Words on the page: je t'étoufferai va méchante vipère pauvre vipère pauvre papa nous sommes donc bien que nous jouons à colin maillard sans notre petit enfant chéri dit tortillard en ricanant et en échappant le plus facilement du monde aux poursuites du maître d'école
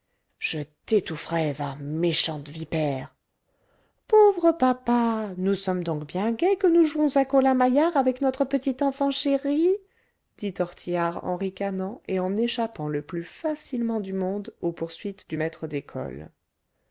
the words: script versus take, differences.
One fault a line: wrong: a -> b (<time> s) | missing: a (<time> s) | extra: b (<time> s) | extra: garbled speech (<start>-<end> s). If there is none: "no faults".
missing: vipère pauvre (4.5 s)
extra: gai (6.3 s)
wrong: sans -> avec (8.0 s)